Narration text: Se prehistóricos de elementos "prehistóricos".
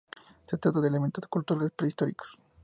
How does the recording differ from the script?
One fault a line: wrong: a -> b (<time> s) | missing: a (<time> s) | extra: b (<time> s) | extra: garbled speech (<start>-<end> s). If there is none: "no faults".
wrong: prehistóricos -> trata (0.6 s)
extra: culturales (1.3 s)